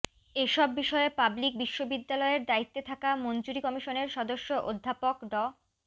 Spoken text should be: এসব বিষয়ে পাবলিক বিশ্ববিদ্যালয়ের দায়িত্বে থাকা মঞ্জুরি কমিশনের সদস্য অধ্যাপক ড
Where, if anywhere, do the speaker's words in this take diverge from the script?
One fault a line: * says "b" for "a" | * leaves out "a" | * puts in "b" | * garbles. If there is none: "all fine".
all fine